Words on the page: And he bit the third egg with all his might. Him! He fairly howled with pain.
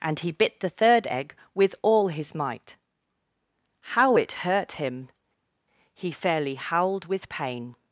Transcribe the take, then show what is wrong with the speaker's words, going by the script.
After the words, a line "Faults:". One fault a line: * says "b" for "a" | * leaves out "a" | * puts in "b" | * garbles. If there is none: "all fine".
And he bit the third egg with all his might. How it hurt him! He fairly howled with pain.
Faults:
* puts in "How it hurt"